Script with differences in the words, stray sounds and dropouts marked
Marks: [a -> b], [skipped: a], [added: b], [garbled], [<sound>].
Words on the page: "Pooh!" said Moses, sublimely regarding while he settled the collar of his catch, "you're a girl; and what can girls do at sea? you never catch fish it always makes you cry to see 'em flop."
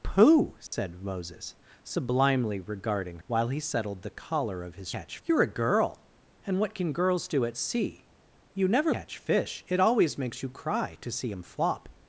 "Pooh!" said [dropout] Moses, sublimely regarding while he settled the collar of his catch, "you're a girl; and what can girls do at sea? you never catch fish it always makes you cry to see 'em flop."